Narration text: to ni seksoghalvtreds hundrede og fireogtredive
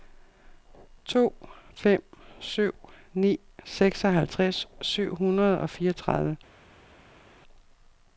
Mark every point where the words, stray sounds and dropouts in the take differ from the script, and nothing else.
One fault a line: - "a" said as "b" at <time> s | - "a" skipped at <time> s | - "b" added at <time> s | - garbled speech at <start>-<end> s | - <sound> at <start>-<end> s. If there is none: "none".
- "fem syv" added at 1.7 s
- "syv" added at 4.8 s